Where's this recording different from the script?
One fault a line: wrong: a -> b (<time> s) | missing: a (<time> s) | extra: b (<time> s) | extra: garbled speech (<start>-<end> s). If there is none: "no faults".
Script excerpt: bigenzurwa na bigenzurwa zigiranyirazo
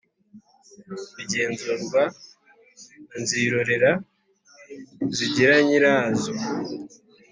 wrong: bigenzurwa -> nzirorera (3.2 s)